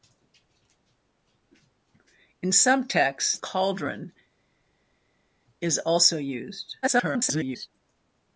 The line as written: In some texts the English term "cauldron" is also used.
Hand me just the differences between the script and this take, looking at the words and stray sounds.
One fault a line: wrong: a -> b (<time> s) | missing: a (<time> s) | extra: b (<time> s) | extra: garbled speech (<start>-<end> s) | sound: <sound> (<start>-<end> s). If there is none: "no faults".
missing: the English term (3.4 s)
extra: garbled speech (6.8-7.7 s)